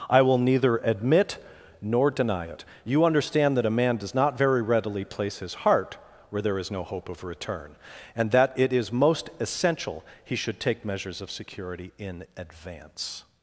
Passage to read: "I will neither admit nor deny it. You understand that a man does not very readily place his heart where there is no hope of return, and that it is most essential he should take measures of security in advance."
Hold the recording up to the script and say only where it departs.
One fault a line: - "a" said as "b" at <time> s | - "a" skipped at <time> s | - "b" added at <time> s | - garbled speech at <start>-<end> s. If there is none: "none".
none